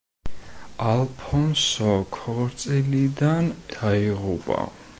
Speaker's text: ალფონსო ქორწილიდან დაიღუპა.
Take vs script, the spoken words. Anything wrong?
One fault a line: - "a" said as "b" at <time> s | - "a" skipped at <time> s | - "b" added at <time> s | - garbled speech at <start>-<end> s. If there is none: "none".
none